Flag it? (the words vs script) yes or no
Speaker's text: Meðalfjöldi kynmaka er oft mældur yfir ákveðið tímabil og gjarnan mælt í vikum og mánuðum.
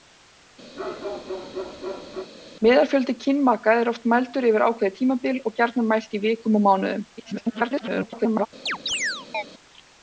yes